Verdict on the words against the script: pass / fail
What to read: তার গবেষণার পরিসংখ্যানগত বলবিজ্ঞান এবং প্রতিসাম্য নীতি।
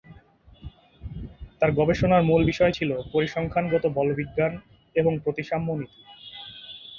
fail